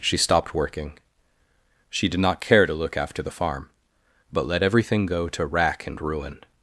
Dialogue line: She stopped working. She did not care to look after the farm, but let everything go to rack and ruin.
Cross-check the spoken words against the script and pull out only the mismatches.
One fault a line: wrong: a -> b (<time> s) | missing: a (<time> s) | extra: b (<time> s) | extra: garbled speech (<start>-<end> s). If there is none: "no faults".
no faults